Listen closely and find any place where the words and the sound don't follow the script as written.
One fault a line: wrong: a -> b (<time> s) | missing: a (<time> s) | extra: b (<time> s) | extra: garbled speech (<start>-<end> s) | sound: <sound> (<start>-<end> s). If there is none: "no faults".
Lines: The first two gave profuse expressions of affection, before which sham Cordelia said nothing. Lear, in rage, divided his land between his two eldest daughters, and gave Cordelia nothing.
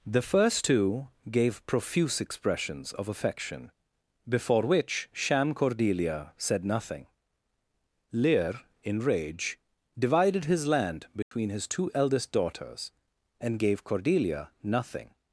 sound: dropout (11.2-11.3 s)